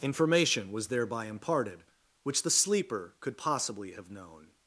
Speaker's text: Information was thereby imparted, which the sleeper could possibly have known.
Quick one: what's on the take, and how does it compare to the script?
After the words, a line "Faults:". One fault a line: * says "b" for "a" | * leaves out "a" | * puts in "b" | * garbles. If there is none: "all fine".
Information was thereby imparted, which the sleeper could possibly have known.
Faults:
all fine